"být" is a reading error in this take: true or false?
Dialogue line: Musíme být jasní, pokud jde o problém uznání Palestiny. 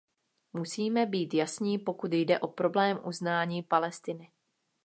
false